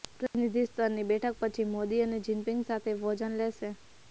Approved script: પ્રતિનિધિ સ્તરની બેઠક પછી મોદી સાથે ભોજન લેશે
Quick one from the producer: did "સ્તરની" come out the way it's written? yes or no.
yes